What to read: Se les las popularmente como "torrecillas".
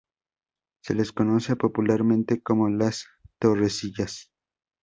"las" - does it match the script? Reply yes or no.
no